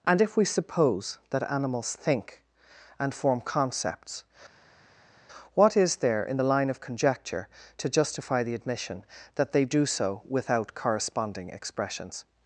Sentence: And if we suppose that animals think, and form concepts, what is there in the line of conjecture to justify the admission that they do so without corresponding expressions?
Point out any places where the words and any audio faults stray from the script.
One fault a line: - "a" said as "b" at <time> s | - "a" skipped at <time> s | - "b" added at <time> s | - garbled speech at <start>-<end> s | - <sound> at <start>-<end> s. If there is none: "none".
none